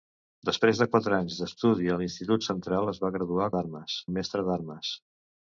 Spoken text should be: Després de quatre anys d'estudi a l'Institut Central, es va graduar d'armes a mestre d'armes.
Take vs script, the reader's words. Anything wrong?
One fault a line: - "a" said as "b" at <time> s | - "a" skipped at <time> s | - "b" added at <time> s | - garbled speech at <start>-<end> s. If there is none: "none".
none